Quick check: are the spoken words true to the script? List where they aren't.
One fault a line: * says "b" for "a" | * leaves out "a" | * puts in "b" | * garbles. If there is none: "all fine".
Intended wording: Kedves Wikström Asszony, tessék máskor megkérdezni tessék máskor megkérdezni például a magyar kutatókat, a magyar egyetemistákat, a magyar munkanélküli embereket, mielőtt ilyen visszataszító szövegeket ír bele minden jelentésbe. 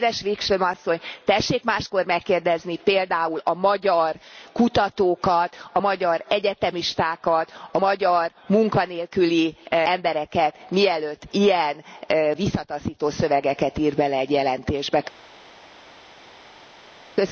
* leaves out "tessék máskor megkérdezni"
* says "egy" for "minden"